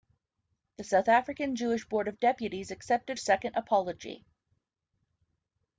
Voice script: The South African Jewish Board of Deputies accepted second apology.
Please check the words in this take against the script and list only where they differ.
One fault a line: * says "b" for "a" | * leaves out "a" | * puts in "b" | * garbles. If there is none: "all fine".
all fine